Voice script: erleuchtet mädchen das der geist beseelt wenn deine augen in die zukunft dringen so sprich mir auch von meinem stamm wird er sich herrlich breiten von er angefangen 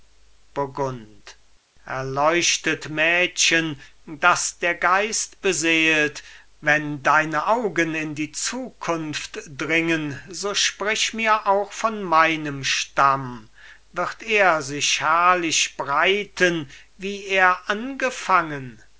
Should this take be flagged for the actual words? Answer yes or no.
yes